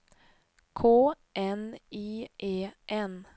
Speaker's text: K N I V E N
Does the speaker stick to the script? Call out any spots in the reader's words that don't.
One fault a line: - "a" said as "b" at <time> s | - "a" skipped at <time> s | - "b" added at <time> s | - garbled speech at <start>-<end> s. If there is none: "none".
- "V" skipped at 2.3 s